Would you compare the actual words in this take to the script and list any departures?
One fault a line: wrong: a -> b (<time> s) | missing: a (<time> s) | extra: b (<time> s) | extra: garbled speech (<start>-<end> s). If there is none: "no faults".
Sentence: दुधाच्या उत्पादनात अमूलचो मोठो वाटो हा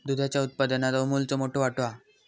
no faults